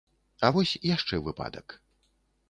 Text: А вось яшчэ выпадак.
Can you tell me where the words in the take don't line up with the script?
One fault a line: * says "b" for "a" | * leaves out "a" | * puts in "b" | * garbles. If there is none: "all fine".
all fine